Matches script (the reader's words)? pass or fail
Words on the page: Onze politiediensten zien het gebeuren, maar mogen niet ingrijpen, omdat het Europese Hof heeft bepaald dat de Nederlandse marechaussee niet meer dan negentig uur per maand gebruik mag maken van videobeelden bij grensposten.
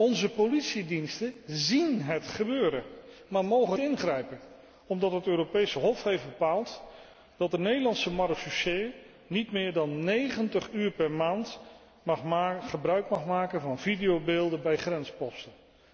fail